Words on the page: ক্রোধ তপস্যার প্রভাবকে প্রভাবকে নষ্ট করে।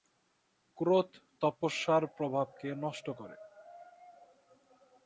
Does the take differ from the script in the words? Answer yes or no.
yes